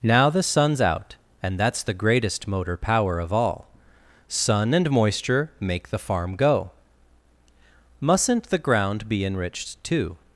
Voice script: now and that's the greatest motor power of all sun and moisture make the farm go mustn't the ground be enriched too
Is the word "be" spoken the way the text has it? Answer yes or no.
yes